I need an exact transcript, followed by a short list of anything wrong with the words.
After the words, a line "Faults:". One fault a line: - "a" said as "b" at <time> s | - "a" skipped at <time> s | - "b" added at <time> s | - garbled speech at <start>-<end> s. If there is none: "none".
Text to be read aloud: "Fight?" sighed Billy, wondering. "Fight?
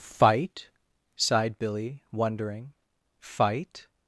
"Fight?" sighed Billy, wondering. "Fight?
Faults:
none